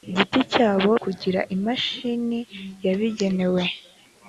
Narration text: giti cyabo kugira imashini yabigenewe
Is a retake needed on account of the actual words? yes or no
no